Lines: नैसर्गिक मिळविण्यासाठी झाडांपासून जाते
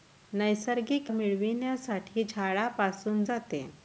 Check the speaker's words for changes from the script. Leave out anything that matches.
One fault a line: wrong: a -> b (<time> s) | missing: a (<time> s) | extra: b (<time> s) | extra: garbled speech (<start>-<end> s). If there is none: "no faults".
no faults